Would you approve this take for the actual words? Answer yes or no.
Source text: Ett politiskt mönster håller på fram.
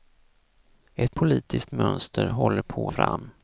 yes